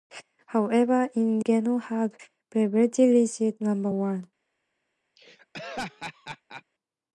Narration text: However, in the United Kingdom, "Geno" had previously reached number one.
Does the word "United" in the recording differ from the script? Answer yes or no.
yes